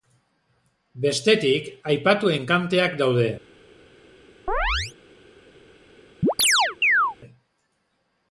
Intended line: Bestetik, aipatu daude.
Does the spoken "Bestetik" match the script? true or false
true